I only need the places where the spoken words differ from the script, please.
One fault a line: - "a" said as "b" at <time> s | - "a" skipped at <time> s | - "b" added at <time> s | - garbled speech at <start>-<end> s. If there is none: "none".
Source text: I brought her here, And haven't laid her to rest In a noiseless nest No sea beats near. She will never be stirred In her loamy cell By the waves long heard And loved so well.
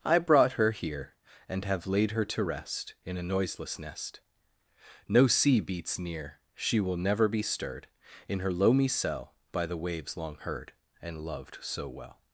- "haven't" said as "have" at 1.6 s